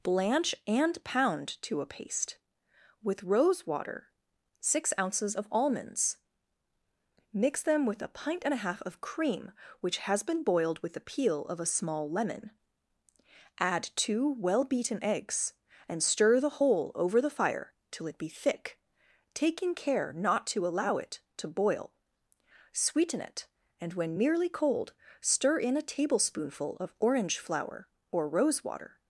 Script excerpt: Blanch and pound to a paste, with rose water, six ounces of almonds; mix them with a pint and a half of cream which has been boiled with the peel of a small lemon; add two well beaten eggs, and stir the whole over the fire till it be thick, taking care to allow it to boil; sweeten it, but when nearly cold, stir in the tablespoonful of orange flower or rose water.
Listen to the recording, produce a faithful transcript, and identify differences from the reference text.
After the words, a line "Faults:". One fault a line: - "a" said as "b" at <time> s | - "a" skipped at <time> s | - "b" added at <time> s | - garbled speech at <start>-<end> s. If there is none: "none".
Blanch and pound to a paste, with rose water, six ounces of almonds; mix them with a pint and a half of cream which has been boiled with the peel of a small lemon; add two well beaten eggs, and stir the whole over the fire till it be thick, taking care not to allow it to boil; sweeten it, and when nearly cold, stir in a tablespoonful of orange flower or rose water.
Faults:
- "not" added at 20.1 s
- "but" said as "and" at 23.8 s
- "the" said as "a" at 25.8 s